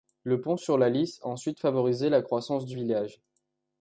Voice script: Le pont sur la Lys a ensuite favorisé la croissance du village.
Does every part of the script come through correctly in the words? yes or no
yes